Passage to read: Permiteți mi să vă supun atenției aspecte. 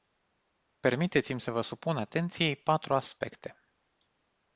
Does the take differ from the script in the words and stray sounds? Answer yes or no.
yes